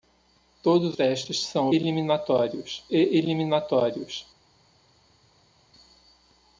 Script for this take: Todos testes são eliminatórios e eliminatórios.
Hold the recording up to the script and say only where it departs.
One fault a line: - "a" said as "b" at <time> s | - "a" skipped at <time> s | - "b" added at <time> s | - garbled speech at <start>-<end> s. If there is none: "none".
none